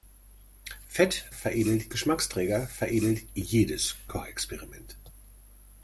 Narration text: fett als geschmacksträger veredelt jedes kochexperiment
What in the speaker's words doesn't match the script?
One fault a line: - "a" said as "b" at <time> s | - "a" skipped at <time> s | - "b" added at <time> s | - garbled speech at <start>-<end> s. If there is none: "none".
- "als" said as "veredelt" at 1.3 s